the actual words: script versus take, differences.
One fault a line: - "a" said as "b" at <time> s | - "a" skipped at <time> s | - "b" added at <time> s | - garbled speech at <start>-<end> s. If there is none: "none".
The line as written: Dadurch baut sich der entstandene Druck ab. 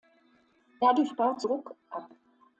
- "sich der entstandene" skipped at 1.4 s